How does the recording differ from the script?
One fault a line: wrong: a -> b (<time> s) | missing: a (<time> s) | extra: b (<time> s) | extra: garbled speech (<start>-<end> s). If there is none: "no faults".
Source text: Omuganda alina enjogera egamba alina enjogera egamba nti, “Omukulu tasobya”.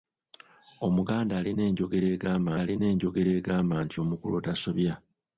no faults